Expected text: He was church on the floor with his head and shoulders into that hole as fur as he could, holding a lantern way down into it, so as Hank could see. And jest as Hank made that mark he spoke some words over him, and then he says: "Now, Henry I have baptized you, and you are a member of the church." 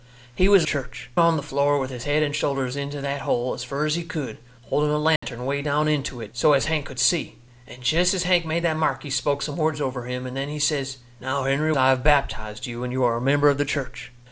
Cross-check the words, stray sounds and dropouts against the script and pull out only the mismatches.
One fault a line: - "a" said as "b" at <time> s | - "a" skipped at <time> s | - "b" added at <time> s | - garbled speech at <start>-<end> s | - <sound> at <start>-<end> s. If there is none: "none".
- dropout at 5.2-5.2 s